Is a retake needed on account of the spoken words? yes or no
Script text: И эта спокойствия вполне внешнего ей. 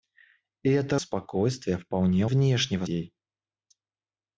no